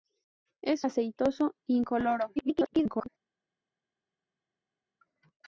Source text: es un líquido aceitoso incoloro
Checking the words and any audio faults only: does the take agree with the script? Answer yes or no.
no